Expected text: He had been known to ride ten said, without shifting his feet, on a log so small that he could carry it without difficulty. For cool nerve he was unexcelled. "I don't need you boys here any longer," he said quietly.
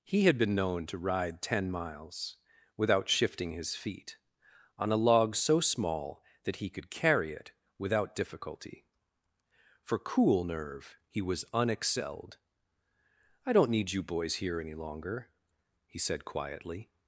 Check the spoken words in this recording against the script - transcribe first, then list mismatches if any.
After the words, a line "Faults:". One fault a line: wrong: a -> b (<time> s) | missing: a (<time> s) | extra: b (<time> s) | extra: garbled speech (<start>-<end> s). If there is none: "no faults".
He had been known to ride ten miles, without shifting his feet, on a log so small that he could carry it without difficulty. For cool nerve he was unexcelled. "I don't need you boys here any longer," he said quietly.
Faults:
wrong: said -> miles (1.7 s)